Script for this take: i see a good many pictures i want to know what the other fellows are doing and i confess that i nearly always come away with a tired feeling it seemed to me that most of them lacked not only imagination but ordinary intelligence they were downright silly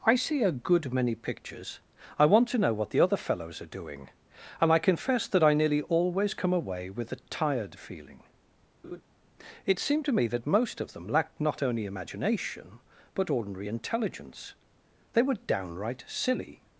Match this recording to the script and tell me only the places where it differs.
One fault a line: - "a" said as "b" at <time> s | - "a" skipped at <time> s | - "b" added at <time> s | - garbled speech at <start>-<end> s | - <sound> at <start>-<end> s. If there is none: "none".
- laugh at 8.8-9.0 s